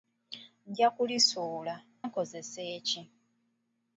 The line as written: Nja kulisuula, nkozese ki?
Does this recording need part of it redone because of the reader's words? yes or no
no